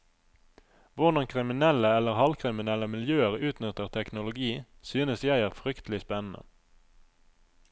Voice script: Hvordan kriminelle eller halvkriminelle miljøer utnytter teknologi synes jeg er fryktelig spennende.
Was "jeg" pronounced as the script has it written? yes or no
yes